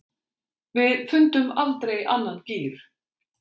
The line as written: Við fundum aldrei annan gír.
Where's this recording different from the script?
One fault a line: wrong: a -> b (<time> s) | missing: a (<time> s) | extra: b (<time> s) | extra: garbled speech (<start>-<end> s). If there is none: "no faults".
no faults